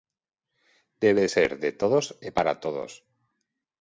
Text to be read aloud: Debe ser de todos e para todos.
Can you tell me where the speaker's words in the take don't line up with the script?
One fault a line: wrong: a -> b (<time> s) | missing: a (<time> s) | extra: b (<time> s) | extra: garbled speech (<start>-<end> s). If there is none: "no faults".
no faults